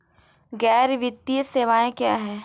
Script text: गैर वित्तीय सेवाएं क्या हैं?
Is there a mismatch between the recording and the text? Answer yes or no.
no